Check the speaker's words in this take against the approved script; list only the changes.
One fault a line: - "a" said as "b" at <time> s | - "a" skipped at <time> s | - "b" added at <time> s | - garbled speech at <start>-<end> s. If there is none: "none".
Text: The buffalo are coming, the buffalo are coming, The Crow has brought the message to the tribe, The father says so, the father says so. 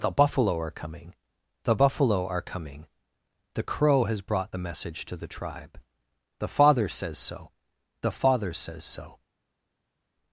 none